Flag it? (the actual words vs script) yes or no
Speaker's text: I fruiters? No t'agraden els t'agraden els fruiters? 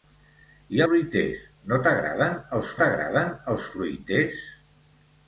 no